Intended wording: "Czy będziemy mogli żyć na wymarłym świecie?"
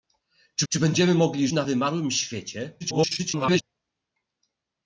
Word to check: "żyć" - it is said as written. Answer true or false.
false